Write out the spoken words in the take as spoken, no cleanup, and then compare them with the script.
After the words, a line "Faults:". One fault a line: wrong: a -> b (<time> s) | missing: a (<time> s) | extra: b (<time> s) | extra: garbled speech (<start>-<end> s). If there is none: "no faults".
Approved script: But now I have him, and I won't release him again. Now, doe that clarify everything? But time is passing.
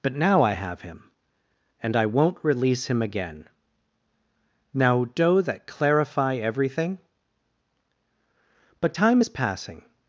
But now I have him, and I won't release him again. Now, doe that clarify everything? But time is passing.
Faults:
no faults